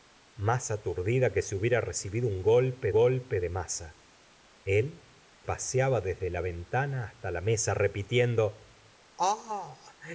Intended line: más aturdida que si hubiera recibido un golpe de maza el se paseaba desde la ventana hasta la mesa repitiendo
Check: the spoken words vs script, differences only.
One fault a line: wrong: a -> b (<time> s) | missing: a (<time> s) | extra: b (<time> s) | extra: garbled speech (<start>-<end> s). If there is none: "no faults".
extra: golpe (2.9 s)
missing: se (5.0 s)